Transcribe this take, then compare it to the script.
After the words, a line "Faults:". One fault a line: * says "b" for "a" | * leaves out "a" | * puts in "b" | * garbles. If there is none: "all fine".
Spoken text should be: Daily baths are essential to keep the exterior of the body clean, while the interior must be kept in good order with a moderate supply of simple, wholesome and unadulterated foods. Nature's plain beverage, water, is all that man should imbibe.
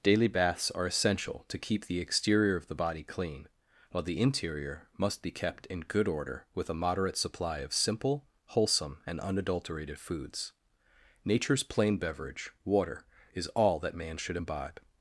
Daily baths are essential to keep the exterior of the body clean, while the interior must be kept in good order with a moderate supply of simple, wholesome and unadulterated foods. Nature's plain beverage, water, is all that man should imbibe.
Faults:
all fine